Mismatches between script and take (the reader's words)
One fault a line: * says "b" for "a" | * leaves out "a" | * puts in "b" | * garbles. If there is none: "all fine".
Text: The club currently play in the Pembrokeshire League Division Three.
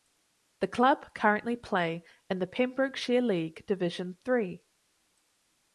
all fine